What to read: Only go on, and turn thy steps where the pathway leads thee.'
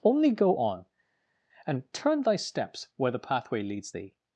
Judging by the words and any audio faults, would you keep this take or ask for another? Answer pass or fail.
pass